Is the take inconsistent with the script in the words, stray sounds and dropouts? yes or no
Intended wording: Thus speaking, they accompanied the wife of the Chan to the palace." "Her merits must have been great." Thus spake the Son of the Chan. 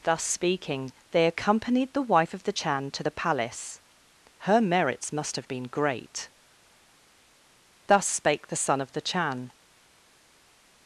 no